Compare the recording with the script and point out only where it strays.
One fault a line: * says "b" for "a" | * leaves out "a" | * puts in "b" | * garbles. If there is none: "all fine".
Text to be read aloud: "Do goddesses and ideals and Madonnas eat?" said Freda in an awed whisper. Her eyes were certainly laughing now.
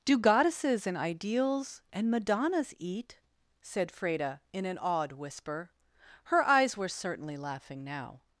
all fine